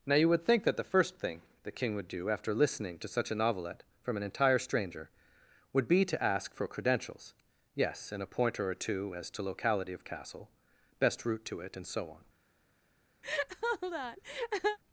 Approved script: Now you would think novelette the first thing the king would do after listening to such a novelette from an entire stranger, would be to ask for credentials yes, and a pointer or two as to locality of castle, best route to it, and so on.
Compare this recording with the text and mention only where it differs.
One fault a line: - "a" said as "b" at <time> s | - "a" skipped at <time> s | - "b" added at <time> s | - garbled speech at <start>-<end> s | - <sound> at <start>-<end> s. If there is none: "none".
- "novelette" said as "that" at 0.6 s
- laugh at 13.2-14.8 s